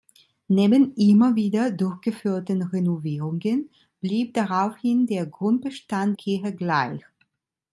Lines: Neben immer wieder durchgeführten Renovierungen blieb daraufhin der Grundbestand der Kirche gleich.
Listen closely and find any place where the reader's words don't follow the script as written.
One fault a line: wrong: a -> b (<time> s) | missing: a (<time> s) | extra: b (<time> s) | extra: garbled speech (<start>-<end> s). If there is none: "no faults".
missing: der (6.2 s)